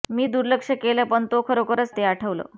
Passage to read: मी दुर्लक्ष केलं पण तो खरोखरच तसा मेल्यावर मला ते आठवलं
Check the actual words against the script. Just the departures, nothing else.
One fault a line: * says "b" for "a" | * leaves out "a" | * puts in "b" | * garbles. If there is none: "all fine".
* leaves out "तसा मेल्यावर मला"